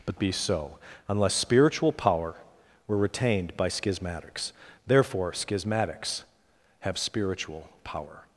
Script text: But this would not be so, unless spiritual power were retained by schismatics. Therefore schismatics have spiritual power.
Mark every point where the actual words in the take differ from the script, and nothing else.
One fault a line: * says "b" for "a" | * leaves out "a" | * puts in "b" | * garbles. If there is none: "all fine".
* leaves out "this would not"